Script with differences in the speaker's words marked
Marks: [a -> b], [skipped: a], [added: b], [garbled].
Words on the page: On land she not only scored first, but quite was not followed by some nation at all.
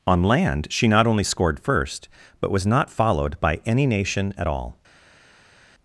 On land she not only scored first, but [skipped: quite] was not followed by [some -> any] nation at all.